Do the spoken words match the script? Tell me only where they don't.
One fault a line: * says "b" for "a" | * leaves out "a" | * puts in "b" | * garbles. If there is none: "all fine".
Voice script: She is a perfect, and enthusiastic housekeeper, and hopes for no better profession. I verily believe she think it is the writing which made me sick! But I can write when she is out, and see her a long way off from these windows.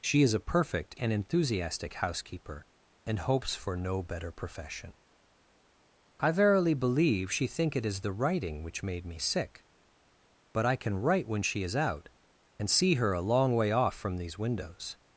all fine